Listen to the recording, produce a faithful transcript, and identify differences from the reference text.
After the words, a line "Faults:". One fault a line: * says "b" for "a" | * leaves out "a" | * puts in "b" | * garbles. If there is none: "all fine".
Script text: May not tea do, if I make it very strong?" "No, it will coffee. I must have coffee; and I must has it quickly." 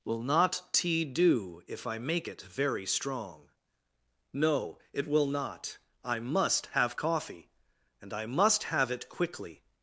Will not tea do, if I make it very strong?" "No, it will not. I must have coffee; and I must have it quickly."
Faults:
* says "Will" for "May"
* says "not" for "coffee"
* says "have" for "has"